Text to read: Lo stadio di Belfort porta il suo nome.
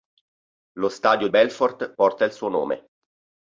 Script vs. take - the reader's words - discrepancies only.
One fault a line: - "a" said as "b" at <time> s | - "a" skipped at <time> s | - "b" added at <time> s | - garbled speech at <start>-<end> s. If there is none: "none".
- "di" skipped at 1.3 s